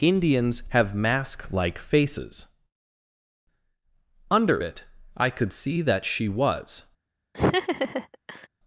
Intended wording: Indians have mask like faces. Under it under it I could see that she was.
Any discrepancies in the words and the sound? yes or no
yes